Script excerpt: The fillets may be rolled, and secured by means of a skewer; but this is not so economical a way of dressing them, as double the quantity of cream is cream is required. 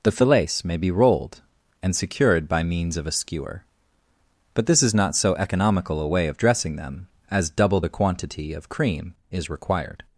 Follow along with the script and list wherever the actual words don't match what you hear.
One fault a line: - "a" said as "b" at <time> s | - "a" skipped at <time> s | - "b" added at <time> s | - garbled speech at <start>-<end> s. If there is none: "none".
- "cream is" skipped at 9.5 s